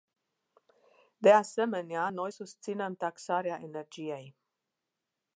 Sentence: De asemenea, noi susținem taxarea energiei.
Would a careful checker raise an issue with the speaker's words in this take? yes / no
no